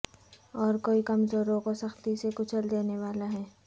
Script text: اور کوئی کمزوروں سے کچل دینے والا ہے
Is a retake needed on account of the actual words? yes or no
yes